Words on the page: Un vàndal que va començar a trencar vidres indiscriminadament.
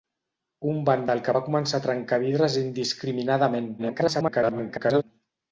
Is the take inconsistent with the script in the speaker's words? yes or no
yes